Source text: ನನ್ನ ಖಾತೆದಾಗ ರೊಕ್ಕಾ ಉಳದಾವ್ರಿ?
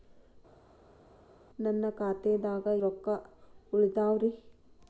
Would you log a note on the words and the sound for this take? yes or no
no